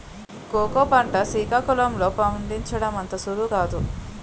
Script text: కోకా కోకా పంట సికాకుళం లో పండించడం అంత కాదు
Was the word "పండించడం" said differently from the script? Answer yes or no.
no